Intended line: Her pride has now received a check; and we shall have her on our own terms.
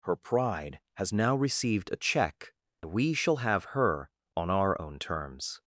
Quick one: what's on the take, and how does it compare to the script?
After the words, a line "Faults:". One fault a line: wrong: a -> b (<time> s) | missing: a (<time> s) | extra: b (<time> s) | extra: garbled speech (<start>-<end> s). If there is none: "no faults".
Her pride has now received a check; we shall have her on our own terms.
Faults:
missing: and (2.5 s)